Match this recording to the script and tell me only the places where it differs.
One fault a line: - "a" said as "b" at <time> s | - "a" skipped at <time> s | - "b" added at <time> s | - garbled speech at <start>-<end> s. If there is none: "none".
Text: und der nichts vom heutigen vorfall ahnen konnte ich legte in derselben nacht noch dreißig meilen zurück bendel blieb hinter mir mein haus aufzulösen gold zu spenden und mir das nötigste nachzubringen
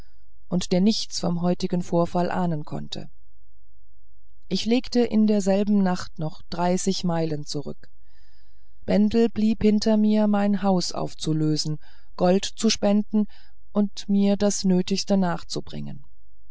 none